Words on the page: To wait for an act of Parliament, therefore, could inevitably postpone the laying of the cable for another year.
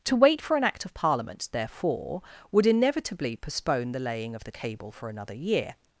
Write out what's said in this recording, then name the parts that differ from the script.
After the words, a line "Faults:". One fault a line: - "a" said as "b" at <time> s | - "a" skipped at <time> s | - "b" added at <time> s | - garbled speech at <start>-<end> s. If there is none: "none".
To wait for an act of Parliament, therefore, would inevitably postpone the laying of the cable for another year.
Faults:
- "could" said as "would" at 2.5 s